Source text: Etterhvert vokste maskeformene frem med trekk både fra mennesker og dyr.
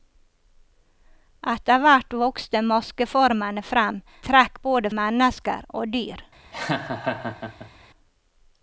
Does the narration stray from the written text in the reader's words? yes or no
yes